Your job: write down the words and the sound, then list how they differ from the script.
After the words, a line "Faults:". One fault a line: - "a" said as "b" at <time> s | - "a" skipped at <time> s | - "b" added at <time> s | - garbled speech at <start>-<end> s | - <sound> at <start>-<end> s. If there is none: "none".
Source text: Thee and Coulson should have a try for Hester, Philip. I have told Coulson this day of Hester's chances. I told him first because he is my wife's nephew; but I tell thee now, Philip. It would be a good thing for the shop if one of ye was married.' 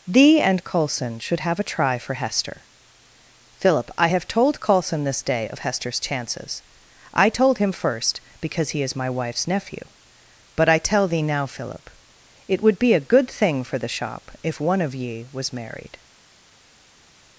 Thee and Coulson should have a try for Hester, Philip. I have told Coulson this day of Hester's chances. I told him first because he is my wife's nephew; but I tell thee now, Philip. It would be a good thing for the shop if one of ye was married.'
Faults:
none